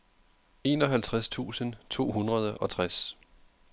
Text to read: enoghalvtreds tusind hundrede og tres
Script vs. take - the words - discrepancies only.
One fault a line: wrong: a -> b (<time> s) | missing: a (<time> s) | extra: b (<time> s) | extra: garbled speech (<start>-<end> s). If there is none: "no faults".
extra: to (1.9 s)